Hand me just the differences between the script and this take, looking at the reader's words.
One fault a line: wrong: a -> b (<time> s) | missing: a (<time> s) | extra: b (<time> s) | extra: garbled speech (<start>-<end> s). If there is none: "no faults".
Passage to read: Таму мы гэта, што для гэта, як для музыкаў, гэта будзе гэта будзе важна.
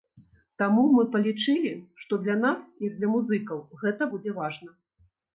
wrong: гэта -> палічылі (1.1 s)
wrong: гэта -> нас (2.5 s)
missing: гэта будзе (4.4 s)